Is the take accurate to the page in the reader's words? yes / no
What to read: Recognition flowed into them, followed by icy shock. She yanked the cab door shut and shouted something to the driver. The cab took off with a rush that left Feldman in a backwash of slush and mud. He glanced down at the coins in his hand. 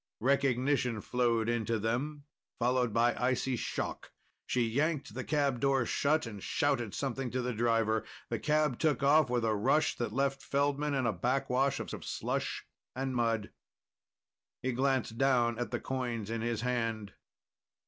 no